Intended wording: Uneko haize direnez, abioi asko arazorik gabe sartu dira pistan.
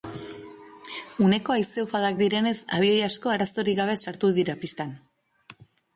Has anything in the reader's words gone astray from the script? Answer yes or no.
yes